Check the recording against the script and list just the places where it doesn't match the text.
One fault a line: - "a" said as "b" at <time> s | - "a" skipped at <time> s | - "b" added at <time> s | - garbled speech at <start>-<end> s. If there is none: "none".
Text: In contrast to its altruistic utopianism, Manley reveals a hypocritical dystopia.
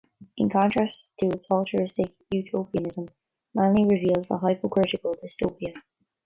none